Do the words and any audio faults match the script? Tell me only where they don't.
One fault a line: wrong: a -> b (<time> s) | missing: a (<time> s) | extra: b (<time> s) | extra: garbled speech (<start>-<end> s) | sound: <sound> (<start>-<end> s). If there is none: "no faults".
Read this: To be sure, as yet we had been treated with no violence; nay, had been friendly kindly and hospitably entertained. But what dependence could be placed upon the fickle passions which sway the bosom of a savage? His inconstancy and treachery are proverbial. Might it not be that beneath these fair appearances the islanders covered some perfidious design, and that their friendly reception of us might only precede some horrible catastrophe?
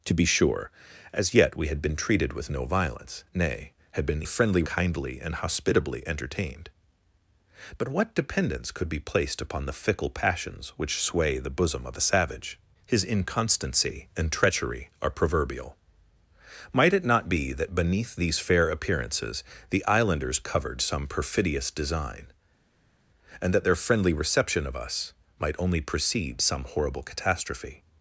no faults